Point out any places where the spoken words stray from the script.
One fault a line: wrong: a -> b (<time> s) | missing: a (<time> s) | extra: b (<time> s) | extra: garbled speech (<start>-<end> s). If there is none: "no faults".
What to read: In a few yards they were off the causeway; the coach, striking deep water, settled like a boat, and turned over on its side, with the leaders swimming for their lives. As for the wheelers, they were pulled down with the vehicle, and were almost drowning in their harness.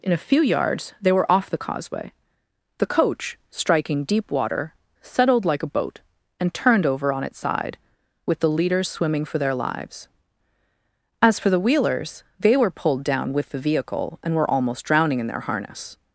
no faults